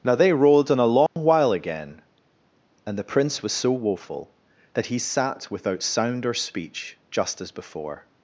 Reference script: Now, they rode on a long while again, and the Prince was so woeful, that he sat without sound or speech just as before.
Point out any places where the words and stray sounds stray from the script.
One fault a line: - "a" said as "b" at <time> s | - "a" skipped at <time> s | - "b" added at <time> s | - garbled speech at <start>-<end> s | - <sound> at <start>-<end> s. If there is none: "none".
- dropout at 1.1-1.2 s